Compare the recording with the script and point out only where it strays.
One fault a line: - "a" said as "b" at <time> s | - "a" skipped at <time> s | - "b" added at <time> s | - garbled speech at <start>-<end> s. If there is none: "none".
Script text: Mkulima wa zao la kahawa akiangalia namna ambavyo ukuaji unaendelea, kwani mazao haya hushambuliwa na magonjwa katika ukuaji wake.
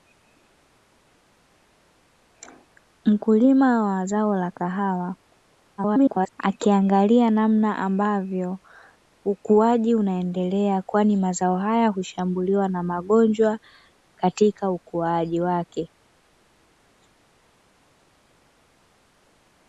- garbled speech at 5.8-6.3 s